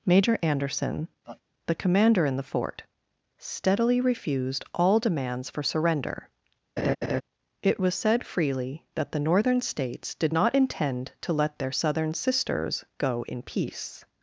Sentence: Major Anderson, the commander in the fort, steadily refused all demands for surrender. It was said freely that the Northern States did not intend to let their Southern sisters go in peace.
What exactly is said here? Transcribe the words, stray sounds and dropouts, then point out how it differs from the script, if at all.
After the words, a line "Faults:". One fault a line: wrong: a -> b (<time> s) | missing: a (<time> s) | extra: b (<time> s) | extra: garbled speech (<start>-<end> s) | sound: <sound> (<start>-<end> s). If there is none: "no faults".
Major Anderson, the commander in the fort, steadily refused all demands for surrender. It was said freely that the Northern States did not intend to let their Southern sisters go in peace.
Faults:
sound: laugh (1.2-1.4 s)
sound: laugh (6.8-7.2 s)